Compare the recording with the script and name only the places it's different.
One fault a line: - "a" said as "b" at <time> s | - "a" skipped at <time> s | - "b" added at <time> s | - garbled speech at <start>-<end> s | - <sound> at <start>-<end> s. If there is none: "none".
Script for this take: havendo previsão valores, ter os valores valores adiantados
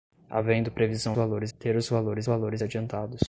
none